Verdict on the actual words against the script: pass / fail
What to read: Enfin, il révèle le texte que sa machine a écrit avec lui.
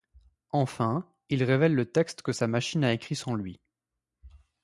fail